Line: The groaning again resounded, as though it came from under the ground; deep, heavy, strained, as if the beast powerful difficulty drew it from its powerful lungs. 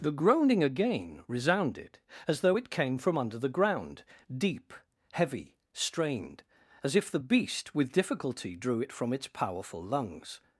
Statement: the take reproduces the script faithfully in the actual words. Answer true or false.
false